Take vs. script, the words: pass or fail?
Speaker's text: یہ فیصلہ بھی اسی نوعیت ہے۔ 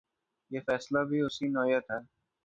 pass